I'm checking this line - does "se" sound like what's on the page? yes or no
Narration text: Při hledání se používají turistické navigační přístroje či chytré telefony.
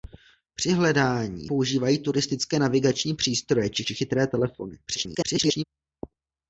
no